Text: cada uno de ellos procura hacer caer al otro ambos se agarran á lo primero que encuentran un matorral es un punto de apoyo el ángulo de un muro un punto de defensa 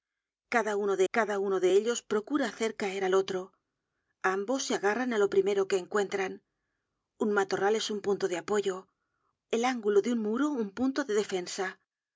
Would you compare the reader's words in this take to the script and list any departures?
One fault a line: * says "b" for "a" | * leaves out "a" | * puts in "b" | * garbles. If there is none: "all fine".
* puts in "cada uno de"